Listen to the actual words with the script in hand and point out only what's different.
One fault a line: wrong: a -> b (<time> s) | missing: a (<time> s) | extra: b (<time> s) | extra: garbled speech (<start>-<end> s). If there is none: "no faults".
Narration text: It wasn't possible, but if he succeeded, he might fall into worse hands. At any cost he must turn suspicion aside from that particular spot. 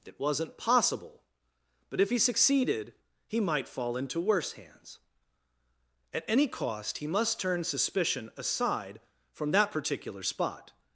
no faults